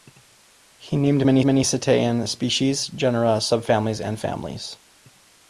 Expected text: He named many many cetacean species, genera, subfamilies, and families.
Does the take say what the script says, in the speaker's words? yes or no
yes